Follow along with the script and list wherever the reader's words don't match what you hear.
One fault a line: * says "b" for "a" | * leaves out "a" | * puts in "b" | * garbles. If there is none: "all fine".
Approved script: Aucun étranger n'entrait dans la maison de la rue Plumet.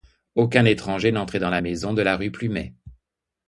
all fine